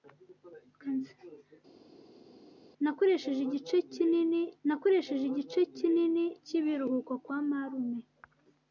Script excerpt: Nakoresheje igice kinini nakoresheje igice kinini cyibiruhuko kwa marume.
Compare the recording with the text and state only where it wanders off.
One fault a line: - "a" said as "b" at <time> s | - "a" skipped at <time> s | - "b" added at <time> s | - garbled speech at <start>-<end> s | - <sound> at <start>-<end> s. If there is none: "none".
none